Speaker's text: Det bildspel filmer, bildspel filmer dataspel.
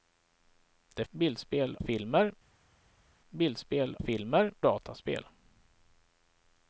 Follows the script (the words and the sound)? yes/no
yes